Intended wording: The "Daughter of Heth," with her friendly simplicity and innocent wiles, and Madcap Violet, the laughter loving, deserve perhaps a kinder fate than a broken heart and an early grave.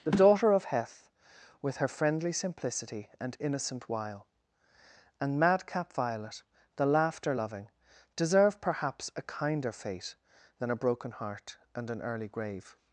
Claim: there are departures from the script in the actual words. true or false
true